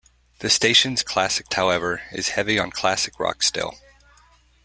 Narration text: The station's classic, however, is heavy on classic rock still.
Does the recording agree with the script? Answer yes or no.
yes